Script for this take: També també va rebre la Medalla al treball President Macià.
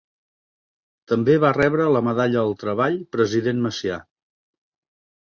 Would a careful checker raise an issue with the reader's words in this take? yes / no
yes